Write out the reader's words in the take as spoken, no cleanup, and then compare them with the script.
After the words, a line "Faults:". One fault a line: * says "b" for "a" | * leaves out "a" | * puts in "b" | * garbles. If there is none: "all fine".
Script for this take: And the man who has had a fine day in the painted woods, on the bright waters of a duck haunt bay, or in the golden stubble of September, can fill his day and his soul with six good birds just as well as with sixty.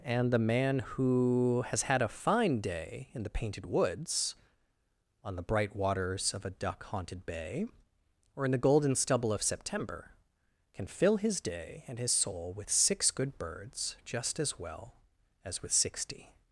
And the man who has had a fine day in the painted woods, on the bright waters of a duck haunted bay, or in the golden stubble of September, can fill his day and his soul with six good birds just as well as with sixty.
Faults:
* says "haunted" for "haunt"